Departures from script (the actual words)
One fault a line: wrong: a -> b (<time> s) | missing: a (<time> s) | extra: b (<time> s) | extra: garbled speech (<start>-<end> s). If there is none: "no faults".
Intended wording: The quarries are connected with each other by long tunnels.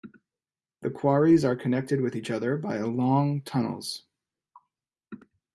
no faults